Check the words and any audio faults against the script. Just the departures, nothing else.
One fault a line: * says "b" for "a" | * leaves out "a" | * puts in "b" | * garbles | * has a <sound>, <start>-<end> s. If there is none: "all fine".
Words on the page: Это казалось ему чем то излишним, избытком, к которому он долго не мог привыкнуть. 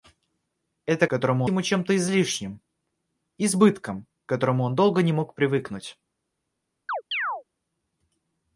* says "которому" for "казалось"
* has a chirp, 6.9-7.4 s